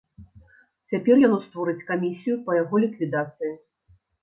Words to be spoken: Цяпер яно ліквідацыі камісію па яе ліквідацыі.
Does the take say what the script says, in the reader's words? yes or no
no